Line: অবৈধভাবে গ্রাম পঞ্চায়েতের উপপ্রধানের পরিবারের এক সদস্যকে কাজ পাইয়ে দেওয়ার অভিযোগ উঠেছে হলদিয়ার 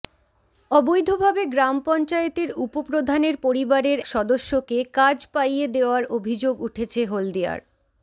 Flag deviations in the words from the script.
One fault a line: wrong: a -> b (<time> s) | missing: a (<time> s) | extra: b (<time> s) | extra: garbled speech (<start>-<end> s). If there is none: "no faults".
missing: এক (4.0 s)